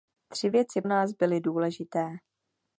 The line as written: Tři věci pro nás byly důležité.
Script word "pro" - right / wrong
wrong